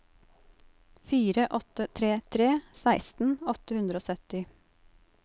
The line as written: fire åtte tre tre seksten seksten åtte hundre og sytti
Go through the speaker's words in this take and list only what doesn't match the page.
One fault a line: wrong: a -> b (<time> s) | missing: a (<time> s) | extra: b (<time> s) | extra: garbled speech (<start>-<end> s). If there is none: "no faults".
missing: seksten (3.4 s)